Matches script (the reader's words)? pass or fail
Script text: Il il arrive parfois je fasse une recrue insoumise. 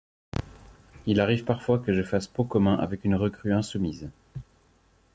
fail